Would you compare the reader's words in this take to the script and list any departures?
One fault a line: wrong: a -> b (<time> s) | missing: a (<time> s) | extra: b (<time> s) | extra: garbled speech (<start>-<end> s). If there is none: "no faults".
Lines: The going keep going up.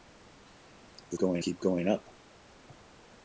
no faults